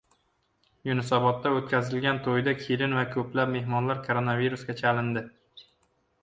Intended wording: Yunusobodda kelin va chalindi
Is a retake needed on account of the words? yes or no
yes